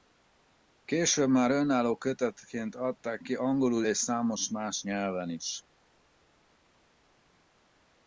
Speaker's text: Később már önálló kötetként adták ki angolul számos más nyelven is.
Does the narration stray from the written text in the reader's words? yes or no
yes